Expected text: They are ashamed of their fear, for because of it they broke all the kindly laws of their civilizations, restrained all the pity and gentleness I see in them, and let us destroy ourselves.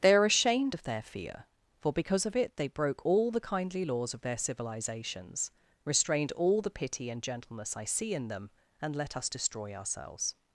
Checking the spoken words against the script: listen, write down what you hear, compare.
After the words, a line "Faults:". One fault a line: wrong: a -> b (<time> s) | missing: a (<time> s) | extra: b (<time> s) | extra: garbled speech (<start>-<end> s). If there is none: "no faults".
They are ashamed of their fear, for because of it they broke all the kindly laws of their civilizations, restrained all the pity and gentleness I see in them, and let us destroy ourselves.
Faults:
no faults